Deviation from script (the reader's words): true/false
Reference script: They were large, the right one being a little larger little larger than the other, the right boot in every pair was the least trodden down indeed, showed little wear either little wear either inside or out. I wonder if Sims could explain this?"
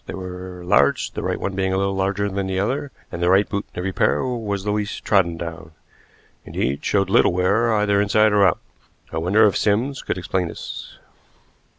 true